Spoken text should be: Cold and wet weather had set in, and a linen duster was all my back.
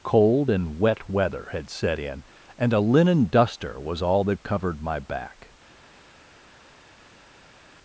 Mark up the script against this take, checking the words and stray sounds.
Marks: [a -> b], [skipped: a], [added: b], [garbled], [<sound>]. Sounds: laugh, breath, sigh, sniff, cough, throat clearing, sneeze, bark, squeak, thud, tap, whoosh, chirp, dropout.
Cold and wet weather had set in, and a linen duster was all [added: that covered] my back.